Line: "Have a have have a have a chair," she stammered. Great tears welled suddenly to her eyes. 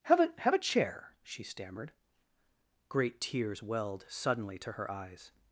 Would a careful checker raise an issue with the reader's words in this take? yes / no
yes